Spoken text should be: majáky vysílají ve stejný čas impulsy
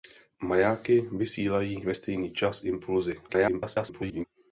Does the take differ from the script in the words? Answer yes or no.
yes